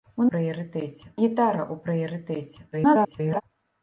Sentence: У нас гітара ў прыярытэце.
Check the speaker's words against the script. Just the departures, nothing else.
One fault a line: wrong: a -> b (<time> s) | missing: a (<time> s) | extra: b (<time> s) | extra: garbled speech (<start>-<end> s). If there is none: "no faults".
wrong: нас -> прыярытэце (0.3 s)
extra: garbled speech (2.7-3.4 s)